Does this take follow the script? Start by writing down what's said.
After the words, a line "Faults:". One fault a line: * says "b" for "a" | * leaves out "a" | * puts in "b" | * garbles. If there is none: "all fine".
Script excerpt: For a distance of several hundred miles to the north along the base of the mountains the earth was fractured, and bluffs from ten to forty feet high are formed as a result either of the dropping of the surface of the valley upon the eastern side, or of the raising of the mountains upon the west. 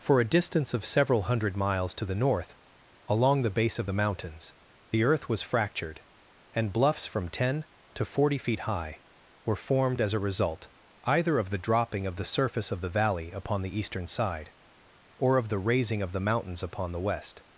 For a distance of several hundred miles to the north along the base of the mountains the earth was fractured, and bluffs from ten to forty feet high were formed as a result either of the dropping of the surface of the valley upon the eastern side, or of the raising of the mountains upon the west.
Faults:
* says "were" for "are"